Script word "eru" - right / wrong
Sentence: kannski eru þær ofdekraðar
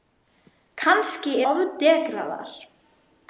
wrong